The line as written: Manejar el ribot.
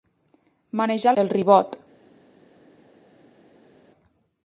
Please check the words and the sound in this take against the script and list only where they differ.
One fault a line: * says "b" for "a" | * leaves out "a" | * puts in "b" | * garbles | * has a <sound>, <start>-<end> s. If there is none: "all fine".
all fine